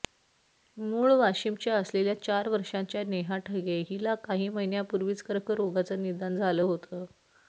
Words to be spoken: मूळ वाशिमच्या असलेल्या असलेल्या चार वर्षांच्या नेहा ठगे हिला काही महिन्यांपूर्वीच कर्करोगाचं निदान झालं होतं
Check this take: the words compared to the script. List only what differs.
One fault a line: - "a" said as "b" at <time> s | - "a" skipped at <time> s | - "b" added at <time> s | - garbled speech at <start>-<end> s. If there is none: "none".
- "असलेल्या" skipped at 2.1 s